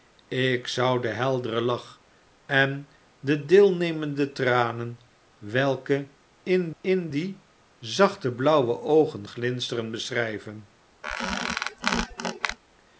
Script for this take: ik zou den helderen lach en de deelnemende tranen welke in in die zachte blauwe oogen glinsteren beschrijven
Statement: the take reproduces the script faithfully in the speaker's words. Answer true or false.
true